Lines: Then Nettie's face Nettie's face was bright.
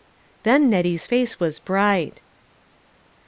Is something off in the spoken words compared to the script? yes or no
yes